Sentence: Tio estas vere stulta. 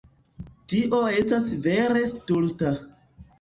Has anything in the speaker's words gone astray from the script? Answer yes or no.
no